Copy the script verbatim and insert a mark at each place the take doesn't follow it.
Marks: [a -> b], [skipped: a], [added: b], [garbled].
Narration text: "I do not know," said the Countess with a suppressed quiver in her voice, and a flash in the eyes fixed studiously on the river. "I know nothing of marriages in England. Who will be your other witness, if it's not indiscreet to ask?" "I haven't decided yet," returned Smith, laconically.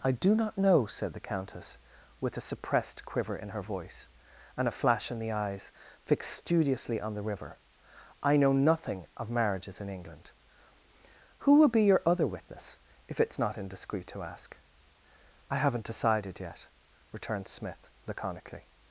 "I do not know," said the Countess with a suppressed quiver in her voice, and a flash in the eyes fixed studiously on the river. "I know nothing of marriages in England. Who will be your other witness, if it's not indiscreet to ask?" "I haven't decided yet," returned Smith, laconically.